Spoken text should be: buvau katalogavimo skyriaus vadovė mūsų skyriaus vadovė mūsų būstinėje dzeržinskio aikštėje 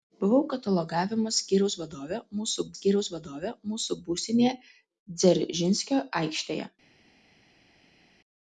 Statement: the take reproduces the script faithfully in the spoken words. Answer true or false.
true